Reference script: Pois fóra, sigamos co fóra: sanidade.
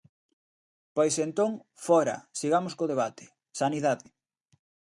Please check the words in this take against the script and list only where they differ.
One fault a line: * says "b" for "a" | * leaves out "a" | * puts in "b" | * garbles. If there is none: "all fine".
* puts in "entón"
* says "debate" for "fóra"